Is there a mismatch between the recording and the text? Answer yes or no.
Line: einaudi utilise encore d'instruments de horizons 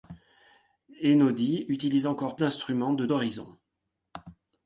no